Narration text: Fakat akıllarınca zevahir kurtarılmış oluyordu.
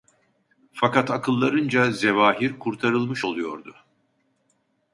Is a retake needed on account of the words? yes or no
no